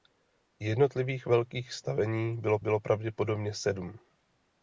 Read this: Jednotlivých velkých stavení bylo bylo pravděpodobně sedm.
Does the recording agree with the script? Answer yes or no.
yes